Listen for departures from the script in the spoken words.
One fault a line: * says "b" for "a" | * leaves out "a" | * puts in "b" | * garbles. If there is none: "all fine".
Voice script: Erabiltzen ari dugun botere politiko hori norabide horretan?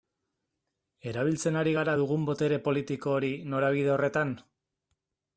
* puts in "gara"